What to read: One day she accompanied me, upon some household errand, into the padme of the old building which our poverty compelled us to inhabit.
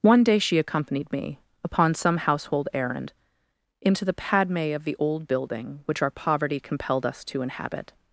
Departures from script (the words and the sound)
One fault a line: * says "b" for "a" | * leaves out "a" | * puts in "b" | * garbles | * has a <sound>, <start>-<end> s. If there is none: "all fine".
all fine